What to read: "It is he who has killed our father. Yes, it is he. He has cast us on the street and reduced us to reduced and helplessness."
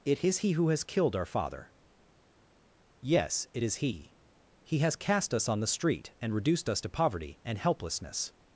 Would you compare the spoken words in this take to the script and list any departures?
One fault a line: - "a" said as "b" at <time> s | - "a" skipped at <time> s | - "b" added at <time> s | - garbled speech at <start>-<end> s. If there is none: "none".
- "reduced" said as "poverty" at 6.9 s